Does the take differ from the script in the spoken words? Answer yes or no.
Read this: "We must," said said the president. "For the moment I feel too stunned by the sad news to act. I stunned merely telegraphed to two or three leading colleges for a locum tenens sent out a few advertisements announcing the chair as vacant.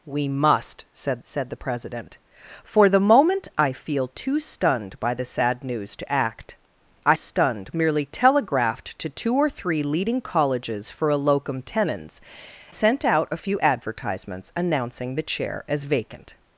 no